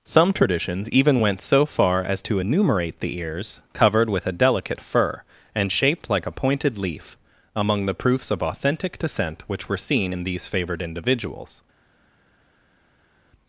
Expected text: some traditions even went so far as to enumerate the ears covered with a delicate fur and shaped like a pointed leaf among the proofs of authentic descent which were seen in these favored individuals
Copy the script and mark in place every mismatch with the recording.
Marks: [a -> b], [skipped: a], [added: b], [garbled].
some traditions even went so far as to enumerate the ears covered with a delicate fur and shaped like a pointed leaf among the proofs of authentic descent which were seen in these favored individuals